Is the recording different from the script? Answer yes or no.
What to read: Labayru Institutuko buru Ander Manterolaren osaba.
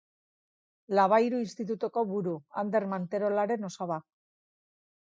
no